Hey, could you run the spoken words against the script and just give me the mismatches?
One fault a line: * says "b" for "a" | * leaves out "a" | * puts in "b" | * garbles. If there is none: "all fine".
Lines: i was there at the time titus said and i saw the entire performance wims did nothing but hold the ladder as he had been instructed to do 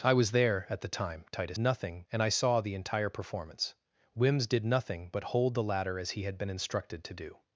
* says "nothing" for "said"